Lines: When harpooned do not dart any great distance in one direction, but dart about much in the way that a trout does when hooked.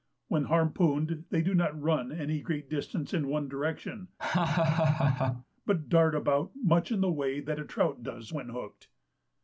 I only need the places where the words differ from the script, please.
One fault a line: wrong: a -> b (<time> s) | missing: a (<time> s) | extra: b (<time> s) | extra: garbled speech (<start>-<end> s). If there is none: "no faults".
extra: they (1.3 s)
wrong: dart -> run (1.8 s)